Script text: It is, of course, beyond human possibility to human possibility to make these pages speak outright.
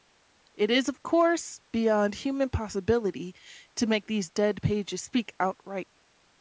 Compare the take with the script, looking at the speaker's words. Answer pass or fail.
fail